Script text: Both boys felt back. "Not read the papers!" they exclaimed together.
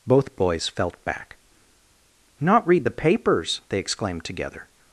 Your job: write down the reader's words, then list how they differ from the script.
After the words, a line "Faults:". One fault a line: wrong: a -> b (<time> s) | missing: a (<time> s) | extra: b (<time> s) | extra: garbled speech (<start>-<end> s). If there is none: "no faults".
Both boys felt back. "Not read the papers!" they exclaimed together.
Faults:
no faults